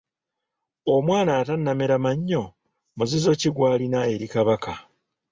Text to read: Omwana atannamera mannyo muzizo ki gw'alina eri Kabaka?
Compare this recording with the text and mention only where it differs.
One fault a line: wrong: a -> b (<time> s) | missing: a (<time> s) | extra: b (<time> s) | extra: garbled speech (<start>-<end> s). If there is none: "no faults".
no faults